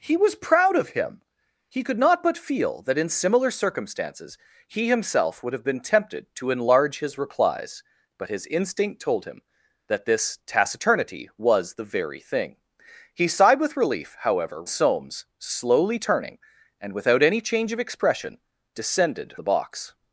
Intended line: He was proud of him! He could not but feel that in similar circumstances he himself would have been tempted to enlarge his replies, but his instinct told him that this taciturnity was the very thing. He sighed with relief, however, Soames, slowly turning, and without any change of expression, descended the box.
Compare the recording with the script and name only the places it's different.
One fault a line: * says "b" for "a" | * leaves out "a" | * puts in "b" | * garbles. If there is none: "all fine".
all fine